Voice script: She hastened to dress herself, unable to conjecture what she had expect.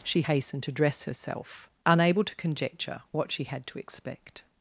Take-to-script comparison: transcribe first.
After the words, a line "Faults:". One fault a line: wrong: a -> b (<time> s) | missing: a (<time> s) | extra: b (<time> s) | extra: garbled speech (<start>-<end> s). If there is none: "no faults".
She hastened to dress herself, unable to conjecture what she had to expect.
Faults:
extra: to (3.6 s)